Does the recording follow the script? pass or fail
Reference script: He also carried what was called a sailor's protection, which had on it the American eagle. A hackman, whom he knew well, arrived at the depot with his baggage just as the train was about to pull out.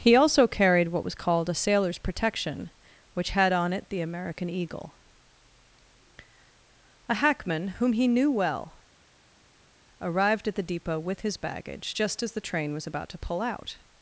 pass